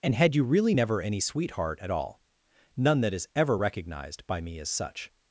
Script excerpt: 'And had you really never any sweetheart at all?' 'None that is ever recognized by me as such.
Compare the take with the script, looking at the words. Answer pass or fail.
pass